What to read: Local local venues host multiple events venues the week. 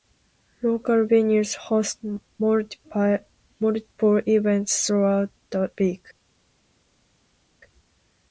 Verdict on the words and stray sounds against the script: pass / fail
fail